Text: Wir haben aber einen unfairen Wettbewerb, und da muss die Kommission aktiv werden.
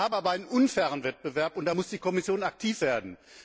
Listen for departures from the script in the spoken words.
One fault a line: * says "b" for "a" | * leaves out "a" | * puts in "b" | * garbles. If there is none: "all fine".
all fine